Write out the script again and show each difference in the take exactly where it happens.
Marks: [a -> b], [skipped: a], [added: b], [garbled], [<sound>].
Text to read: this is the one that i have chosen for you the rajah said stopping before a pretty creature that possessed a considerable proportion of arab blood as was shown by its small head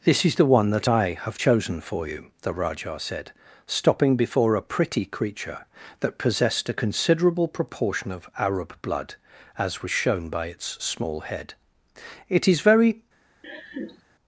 this is the one that i have chosen for you the rajah said stopping before a pretty creature that possessed a considerable proportion of arab blood as was shown by its small head [added: it is very] [laugh]